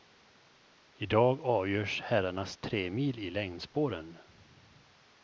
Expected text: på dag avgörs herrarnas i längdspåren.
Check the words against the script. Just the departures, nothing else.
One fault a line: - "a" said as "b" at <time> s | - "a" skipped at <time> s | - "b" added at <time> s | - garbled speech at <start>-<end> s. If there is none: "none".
- "på" said as "I" at 0.9 s
- "tremil" added at 2.6 s